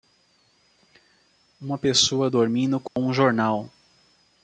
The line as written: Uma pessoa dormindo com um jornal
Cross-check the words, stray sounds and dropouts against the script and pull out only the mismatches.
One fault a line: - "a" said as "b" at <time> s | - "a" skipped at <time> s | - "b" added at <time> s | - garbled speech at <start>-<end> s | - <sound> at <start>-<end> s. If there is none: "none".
- dropout at 2.9-3.0 s